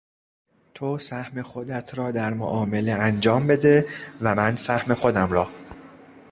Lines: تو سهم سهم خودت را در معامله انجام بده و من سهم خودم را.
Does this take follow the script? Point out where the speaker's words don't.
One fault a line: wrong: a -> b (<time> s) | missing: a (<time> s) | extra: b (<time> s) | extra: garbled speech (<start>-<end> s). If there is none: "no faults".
missing: سهم (1.4 s)